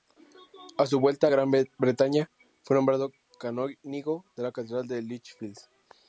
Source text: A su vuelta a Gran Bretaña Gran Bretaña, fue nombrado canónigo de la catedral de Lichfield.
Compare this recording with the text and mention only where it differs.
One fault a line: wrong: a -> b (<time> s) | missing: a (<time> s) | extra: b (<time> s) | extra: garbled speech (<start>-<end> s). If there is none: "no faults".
missing: Gran Bretaña (2.3 s)